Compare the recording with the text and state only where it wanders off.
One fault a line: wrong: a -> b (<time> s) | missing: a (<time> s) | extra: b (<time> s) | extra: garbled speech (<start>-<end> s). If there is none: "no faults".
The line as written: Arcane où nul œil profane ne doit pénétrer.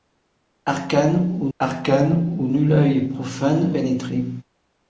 extra: arcane où (1.6 s)
missing: ne doit (3.7 s)